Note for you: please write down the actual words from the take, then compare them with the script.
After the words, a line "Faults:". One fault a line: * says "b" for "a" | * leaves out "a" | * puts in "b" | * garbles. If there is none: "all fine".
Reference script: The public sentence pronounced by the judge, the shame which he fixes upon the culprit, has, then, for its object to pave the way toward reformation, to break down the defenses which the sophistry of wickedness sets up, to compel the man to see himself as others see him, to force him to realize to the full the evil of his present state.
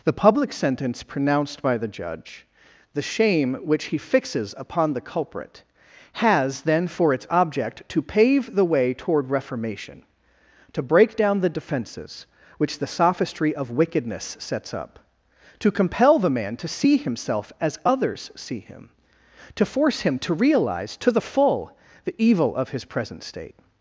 The public sentence pronounced by the judge, the shame which he fixes upon the culprit, has, then, for its object to pave the way toward reformation, to break down the defenses which the sophistry of wickedness sets up, to compel the man to see himself as others see him, to force him to realize to the full the evil of his present state.
Faults:
all fine